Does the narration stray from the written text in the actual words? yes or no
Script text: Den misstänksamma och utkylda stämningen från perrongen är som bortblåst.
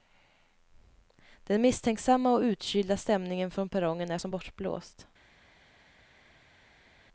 no